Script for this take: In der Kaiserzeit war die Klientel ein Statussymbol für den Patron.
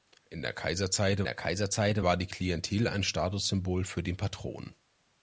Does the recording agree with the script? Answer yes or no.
no